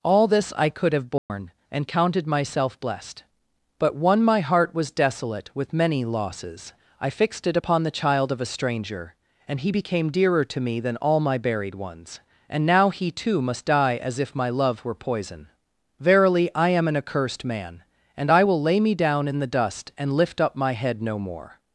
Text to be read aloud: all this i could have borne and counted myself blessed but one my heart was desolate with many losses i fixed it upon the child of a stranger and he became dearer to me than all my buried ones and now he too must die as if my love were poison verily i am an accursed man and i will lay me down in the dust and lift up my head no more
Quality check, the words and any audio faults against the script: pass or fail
fail